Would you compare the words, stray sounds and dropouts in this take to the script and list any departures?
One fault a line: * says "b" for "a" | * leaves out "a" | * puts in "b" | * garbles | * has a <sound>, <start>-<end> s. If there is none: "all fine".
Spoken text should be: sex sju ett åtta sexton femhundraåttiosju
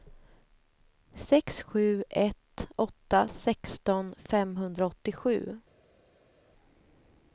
all fine